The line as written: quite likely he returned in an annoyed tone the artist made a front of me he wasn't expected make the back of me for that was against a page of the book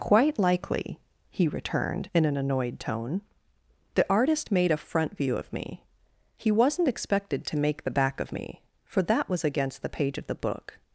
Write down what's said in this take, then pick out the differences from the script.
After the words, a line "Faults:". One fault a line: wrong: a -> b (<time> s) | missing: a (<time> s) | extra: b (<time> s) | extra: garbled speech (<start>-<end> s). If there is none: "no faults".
quite likely he returned in an annoyed tone the artist made a front view of me he wasn't expected to make the back of me for that was against the page of the book
Faults:
extra: view (5.2 s)
extra: to (7.5 s)
wrong: a -> the (9.8 s)